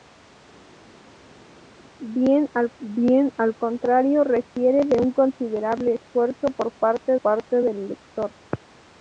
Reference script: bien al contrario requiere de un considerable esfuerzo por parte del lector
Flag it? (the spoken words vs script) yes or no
yes